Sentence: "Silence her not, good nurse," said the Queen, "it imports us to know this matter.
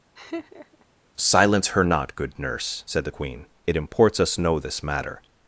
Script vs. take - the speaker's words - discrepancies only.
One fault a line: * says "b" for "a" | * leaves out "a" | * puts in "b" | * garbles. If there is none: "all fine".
* leaves out "to"